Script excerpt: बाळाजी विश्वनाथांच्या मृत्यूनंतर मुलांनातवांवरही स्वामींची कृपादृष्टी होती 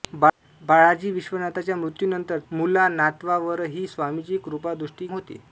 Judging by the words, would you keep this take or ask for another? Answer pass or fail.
pass